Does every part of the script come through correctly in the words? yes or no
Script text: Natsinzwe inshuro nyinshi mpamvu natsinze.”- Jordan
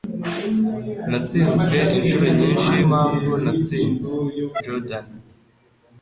yes